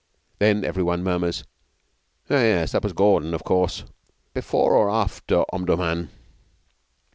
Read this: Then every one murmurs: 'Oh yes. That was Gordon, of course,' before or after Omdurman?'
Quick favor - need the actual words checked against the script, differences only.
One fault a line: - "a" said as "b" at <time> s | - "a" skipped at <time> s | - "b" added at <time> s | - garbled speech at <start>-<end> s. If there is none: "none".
none